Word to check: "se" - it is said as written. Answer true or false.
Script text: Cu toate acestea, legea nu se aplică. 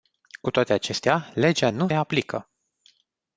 false